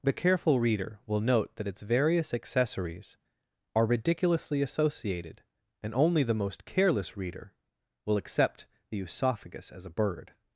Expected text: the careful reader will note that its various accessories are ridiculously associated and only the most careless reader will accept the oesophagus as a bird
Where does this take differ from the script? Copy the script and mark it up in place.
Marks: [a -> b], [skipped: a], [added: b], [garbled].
the careful reader will note that its various accessories are ridiculously associated and only the most careless reader will accept the oesophagus as a bird